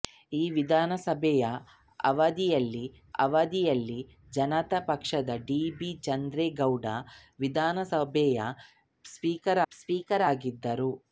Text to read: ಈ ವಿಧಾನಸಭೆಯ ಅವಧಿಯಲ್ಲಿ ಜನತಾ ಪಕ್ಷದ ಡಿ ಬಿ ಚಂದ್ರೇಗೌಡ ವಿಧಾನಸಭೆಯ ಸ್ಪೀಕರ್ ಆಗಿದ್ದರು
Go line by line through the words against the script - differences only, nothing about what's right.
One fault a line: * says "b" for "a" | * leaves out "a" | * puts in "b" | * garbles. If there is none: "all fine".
* puts in "ಅವಧಿಯಲ್ಲಿ"
* puts in "ಸ್ಪೀಕರ್"